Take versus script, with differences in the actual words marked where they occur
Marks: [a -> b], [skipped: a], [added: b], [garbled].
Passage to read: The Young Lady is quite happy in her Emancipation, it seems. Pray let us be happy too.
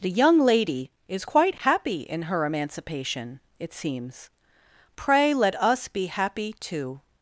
The Young Lady is quite happy in her Emancipation, it seems. Pray let us be happy too.